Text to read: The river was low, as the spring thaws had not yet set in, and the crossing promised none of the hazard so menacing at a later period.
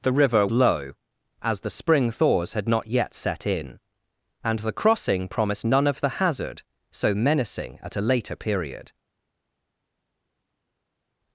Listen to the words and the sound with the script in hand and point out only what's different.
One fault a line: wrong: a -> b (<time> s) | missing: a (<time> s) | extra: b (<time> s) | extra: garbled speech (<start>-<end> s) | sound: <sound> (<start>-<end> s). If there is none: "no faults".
missing: was (0.5 s)